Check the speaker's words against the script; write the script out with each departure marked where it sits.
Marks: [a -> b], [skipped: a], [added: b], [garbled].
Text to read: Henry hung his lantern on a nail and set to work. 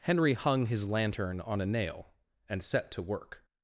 Henry hung his lantern on a nail and set to work.